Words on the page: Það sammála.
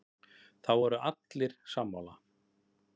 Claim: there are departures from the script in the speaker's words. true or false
true